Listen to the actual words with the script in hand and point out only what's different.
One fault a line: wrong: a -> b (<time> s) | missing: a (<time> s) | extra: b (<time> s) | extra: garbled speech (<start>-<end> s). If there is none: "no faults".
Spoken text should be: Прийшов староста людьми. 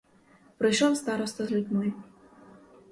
no faults